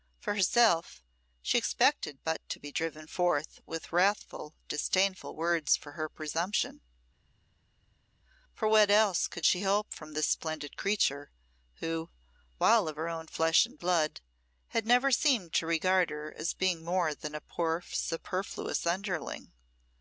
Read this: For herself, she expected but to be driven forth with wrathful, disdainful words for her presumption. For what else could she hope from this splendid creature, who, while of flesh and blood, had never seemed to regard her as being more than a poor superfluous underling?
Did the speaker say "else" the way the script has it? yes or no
yes